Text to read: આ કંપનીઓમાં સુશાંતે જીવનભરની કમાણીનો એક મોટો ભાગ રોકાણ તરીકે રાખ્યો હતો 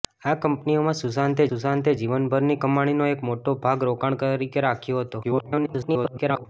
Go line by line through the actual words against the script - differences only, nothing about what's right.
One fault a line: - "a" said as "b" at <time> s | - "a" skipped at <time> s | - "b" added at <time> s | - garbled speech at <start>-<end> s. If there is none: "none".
- "સુશાંતે" added at 1.5 s
- garbled speech at 5.2-6.5 s